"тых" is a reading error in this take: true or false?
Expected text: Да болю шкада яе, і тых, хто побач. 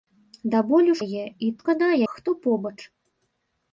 true